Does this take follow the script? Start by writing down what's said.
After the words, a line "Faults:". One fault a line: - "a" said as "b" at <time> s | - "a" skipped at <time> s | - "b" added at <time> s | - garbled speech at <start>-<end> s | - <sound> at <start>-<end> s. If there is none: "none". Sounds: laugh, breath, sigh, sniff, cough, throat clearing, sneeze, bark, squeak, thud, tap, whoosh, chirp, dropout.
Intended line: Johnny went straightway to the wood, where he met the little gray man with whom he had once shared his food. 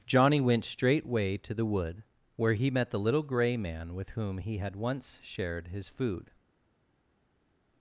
Johnny went straightway to the wood, where he met the little gray man with whom he had once shared his food.
Faults:
none